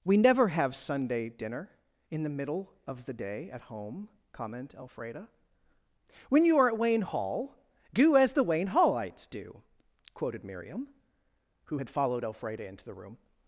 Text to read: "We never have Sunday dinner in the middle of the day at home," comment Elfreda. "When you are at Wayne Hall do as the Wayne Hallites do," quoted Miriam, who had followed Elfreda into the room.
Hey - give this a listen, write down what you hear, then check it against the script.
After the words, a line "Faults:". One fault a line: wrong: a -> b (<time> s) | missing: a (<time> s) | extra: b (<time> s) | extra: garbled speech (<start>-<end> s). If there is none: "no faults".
"We never have Sunday dinner in the middle of the day at home," comment Elfreda. "When you are at Wayne Hall do as the Wayne Hallites do," quoted Miriam, who had followed Elfreda into the room.
Faults:
no faults